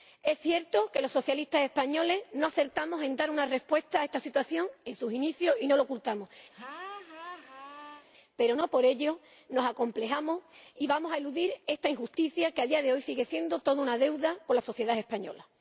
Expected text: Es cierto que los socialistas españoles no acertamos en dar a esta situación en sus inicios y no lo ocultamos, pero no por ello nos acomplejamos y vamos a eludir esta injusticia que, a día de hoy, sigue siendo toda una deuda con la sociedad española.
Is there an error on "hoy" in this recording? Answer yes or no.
no